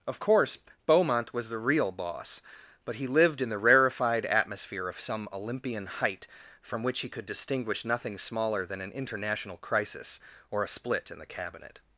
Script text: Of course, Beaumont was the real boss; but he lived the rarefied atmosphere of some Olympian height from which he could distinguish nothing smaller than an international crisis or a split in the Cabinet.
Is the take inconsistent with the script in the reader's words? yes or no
yes